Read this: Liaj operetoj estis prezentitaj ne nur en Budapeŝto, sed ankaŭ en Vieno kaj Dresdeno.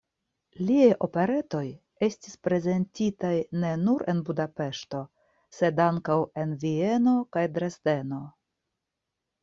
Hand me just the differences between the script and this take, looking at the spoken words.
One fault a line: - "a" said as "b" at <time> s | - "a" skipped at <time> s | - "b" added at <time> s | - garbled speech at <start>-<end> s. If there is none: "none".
none